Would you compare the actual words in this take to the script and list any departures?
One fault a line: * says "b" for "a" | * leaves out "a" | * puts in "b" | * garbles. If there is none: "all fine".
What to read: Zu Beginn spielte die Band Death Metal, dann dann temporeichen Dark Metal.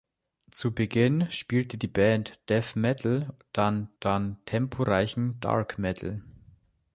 all fine